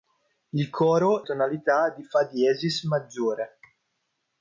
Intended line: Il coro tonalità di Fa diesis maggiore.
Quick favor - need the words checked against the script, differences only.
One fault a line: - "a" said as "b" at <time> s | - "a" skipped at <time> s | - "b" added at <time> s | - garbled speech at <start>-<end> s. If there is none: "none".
none